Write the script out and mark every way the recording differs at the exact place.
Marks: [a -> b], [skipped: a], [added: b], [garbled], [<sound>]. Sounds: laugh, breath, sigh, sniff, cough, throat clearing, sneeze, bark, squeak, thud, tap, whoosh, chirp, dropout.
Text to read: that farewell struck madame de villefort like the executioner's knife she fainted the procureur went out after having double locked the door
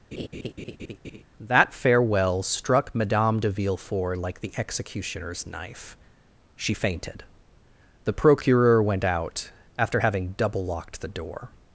[laugh] that farewell struck madame de villefort like the executioner's knife she fainted the procureur went out after having double locked the door